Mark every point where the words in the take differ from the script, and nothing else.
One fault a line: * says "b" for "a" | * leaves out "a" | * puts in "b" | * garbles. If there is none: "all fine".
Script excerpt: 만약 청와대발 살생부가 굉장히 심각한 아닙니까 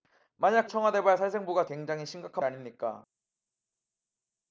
all fine